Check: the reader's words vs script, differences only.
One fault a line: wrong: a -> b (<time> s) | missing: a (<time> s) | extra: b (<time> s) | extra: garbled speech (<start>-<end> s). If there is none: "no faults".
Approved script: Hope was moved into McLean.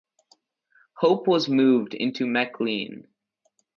no faults